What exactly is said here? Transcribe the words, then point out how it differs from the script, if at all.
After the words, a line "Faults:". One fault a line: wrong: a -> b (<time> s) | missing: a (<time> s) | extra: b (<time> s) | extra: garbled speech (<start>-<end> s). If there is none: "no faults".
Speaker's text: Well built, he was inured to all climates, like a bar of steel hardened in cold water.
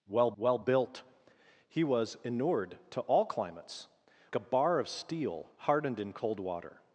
Well well built, he was inured to all climates, a bar of steel hardened in cold water.
Faults:
extra: well (0.4 s)
missing: like (3.9 s)